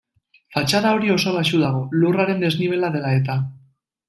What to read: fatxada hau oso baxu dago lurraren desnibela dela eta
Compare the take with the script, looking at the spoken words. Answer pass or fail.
fail